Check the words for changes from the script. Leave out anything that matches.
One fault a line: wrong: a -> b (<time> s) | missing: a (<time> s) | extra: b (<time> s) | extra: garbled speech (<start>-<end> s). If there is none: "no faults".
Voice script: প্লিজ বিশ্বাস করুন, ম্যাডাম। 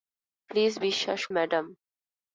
missing: করুন (1.2 s)